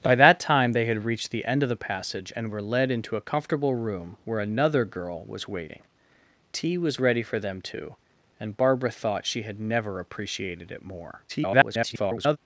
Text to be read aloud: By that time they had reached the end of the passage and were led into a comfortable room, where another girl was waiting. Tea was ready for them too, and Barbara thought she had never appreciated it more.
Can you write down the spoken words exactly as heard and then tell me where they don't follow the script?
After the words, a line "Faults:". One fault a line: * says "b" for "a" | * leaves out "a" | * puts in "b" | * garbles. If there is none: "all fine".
By that time they had reached the end of the passage and were led into a comfortable room, where another girl was waiting. Tea was ready for them too, and Barbara thought she had never appreciated it more. [garbled]
Faults:
* garbles